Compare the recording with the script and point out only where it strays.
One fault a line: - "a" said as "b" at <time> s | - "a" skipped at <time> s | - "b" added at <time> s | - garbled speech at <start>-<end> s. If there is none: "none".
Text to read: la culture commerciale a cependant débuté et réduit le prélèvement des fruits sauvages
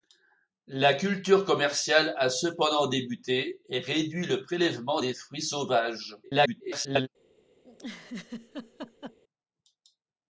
- garbled speech at 6.2-7.1 s